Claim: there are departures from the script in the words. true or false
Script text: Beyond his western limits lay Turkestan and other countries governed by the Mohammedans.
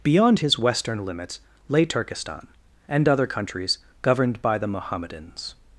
false